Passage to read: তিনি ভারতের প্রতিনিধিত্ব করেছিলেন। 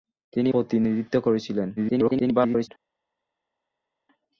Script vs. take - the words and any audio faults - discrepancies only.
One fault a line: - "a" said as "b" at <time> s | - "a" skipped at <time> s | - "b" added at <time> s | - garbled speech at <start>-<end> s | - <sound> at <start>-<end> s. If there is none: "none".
- "ভারতের" skipped at 0.5 s
- garbled speech at 1.8-2.7 s